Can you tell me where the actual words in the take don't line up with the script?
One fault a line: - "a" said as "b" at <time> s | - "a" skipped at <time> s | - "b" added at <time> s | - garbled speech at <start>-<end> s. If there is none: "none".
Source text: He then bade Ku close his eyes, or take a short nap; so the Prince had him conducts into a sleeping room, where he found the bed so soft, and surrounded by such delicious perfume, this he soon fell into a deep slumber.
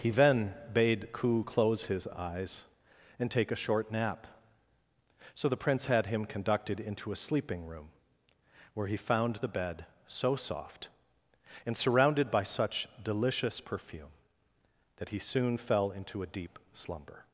- "or" said as "and" at 3.2 s
- "conducts" said as "conducted" at 6.2 s
- "this" said as "that" at 15.0 s